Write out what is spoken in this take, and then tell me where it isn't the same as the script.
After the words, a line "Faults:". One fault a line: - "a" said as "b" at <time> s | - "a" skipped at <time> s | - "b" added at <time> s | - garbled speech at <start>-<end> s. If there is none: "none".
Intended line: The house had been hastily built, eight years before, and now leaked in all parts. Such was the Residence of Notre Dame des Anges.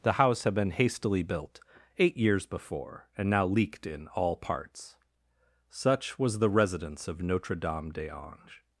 The house had been hastily built, eight years before, and now leaked in all parts. Such was the Residence of Notre Dame des Anges.
Faults:
none